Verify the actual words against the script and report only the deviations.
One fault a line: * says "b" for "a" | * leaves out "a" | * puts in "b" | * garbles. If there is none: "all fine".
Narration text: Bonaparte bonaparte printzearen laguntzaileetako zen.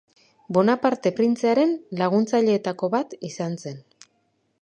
* leaves out "bonaparte"
* puts in "bat izan"